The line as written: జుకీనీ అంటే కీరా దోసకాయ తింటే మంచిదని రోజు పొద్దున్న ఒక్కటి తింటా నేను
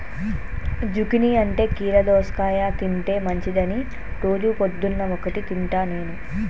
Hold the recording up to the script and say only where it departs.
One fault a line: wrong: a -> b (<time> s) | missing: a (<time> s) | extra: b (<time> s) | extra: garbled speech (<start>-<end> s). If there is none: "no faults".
no faults